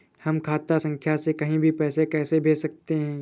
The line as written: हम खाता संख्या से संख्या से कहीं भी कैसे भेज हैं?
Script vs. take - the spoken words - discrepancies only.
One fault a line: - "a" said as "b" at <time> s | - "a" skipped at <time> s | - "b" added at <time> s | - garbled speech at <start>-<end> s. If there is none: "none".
- "संख्या से" skipped at 1.3 s
- "पैसे" added at 1.7 s
- "सकते" added at 2.6 s